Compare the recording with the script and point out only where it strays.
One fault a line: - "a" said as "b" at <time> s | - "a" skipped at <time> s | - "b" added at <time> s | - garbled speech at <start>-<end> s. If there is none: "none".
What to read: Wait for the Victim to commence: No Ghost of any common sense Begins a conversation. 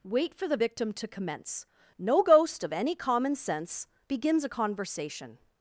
none